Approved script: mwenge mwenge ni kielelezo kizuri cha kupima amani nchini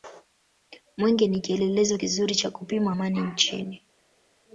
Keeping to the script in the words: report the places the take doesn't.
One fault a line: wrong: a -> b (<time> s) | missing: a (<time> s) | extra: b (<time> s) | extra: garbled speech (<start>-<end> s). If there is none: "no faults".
missing: mwenge (1.3 s)